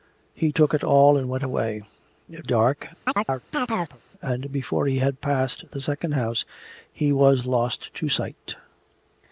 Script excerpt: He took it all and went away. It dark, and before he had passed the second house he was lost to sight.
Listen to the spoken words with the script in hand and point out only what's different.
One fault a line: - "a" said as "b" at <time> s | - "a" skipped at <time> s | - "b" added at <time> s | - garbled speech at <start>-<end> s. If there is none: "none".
none